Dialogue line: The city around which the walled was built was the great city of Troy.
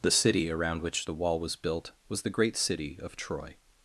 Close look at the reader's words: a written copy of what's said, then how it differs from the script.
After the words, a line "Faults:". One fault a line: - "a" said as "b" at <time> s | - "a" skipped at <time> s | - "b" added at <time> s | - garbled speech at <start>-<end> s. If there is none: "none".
The city around which the wall was built was the great city of Troy.
Faults:
- "walled" said as "wall" at 1.1 s